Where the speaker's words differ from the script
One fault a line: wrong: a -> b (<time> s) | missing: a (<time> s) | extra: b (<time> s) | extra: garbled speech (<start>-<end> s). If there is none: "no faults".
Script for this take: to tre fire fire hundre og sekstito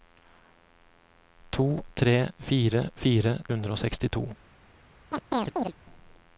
no faults